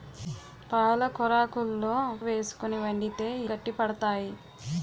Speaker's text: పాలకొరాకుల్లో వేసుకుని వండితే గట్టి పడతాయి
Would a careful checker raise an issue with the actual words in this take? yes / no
no